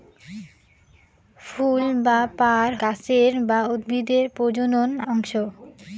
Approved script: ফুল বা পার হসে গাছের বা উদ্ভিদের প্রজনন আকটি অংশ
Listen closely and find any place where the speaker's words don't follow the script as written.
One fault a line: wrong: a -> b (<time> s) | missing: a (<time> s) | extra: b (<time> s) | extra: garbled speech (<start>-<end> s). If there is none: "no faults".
missing: হসে (2.7 s)
missing: আকটি (4.9 s)